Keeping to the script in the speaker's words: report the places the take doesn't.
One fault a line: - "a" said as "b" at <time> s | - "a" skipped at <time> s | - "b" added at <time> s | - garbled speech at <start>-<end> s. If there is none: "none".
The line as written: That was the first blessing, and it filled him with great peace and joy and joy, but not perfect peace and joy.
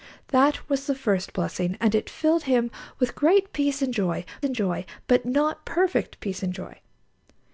none